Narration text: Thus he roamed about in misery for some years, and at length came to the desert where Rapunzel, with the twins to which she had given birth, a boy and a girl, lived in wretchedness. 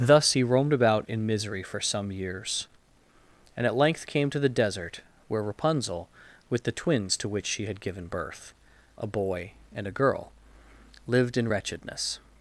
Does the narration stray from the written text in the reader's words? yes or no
no